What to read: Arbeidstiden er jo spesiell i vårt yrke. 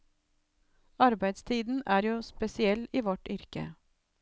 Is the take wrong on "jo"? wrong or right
right